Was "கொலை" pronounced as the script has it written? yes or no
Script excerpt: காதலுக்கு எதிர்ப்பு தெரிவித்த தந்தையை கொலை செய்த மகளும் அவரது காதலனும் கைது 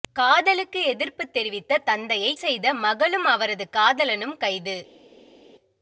no